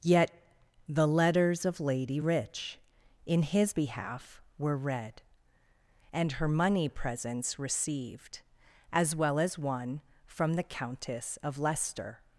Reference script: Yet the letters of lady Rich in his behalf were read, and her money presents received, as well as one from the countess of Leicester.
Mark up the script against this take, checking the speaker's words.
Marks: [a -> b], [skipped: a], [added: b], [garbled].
Yet the letters of lady Rich in his behalf were read, and her money presents received, as well as one from the countess of Leicester.